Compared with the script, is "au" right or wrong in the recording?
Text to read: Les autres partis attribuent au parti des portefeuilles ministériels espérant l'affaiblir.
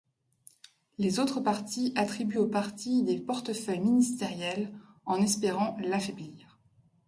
right